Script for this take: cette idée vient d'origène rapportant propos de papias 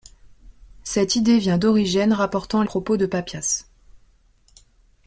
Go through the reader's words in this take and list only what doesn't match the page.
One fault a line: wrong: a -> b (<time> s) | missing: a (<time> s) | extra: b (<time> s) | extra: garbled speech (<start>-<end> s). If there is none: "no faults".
no faults